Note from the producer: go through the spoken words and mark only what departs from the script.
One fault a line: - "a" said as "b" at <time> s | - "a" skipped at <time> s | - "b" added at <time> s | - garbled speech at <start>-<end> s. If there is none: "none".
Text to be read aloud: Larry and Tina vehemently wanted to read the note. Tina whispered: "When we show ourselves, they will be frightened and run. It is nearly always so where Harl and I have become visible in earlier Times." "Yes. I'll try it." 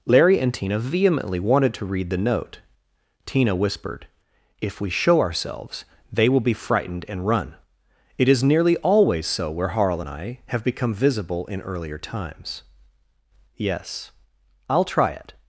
- "When" said as "If" at 4.6 s